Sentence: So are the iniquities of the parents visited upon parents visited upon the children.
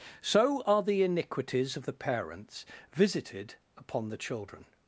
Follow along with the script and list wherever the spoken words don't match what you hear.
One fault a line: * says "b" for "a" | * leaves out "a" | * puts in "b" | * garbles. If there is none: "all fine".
* leaves out "parents visited upon"